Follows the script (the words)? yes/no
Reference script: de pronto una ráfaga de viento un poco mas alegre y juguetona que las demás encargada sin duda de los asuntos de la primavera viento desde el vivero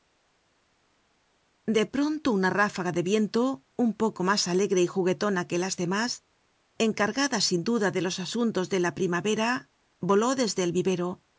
no